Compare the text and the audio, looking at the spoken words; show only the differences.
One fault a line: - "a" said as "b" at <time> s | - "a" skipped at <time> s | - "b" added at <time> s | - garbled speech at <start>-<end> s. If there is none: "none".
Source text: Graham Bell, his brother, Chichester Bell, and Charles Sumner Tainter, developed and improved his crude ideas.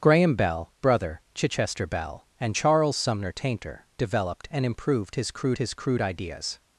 - "his" skipped at 0.7 s
- "his crude" added at 5.6 s